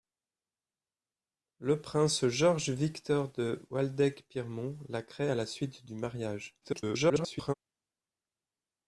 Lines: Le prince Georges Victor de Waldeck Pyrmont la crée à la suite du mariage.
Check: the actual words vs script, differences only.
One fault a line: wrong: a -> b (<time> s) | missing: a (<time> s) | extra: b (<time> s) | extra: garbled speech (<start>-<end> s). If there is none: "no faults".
extra: garbled speech (6.6-7.5 s)